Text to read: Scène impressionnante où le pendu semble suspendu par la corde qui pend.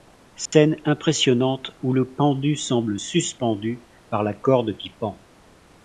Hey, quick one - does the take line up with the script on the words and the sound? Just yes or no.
no